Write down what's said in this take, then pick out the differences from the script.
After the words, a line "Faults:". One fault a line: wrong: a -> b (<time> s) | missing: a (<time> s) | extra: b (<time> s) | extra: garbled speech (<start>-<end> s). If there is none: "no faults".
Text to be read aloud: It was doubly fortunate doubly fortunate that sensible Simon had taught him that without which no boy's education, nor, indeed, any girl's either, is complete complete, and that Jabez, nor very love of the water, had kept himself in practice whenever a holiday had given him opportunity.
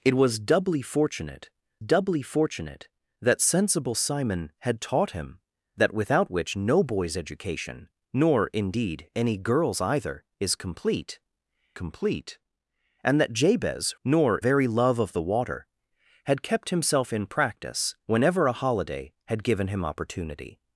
It was doubly fortunate doubly fortunate that sensible Simon had taught him that without which no boy's education, nor, indeed, any girl's either, is complete complete, and that Jabez, nor very love of the water, had kept himself in practice whenever a holiday had given him opportunity.
Faults:
no faults